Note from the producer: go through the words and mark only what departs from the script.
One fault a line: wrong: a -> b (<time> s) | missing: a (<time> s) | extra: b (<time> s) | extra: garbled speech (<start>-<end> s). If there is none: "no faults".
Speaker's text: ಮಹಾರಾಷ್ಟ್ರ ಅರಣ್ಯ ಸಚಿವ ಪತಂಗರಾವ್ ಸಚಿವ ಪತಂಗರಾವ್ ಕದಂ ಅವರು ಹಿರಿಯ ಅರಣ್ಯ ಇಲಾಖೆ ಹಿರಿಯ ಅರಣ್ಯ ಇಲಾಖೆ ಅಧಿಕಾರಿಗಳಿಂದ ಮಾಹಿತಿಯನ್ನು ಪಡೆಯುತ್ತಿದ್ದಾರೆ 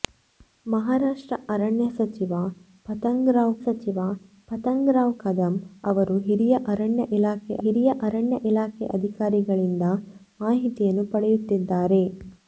no faults